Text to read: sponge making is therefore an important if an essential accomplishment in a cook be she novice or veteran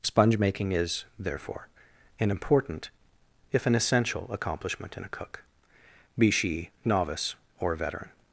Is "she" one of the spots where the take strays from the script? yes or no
no